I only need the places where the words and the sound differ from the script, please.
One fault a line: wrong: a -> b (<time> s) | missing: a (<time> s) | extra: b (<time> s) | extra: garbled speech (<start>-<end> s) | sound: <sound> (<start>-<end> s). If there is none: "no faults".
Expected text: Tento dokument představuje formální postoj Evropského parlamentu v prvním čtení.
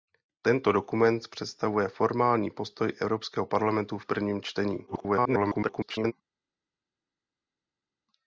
extra: garbled speech (4.9-6.1 s)